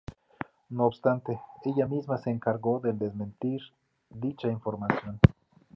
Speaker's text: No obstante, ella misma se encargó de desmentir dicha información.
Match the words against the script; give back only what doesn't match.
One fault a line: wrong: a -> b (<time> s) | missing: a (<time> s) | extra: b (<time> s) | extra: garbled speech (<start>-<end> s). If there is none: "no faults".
no faults